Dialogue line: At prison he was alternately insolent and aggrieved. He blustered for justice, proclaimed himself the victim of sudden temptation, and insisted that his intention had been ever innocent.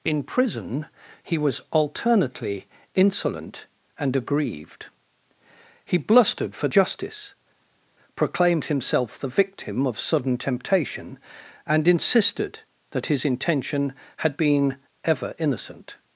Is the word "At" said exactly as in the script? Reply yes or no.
no